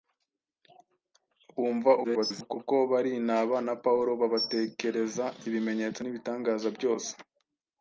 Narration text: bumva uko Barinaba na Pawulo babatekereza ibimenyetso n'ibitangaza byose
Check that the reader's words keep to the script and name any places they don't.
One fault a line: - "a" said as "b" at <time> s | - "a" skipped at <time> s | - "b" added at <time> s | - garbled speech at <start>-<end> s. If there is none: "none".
- garbled speech at 2.0-2.6 s